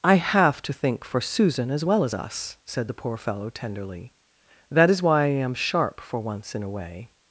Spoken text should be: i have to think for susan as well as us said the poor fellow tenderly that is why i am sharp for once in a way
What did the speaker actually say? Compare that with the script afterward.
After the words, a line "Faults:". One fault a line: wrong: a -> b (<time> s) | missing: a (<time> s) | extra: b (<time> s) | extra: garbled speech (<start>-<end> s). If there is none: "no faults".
i have to think for susan as well as us said the poor fellow tenderly that is why i am sharp for once in a way
Faults:
no faults